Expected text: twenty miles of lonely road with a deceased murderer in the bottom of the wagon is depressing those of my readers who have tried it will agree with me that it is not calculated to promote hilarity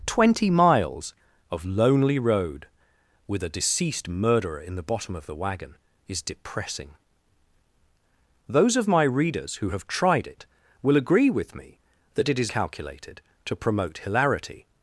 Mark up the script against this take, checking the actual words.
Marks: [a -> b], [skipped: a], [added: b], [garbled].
twenty miles of lonely road with a deceased murderer in the bottom of the wagon is depressing those of my readers who have tried it will agree with me that it is [skipped: not] calculated to promote hilarity